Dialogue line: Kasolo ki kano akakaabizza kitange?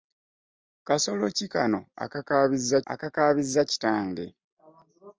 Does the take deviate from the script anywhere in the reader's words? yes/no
yes